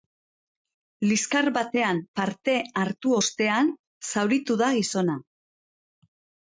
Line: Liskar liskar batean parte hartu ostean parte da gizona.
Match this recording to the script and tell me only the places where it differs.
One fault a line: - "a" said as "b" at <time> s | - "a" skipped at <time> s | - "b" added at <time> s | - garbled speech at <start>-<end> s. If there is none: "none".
- "liskar" skipped at 1.5 s
- "parte" said as "zauritu" at 4.1 s